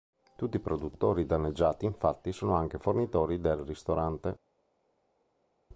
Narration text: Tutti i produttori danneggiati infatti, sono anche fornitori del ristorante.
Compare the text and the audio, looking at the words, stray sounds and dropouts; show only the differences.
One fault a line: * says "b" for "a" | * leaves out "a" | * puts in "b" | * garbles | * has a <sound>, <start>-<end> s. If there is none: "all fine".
all fine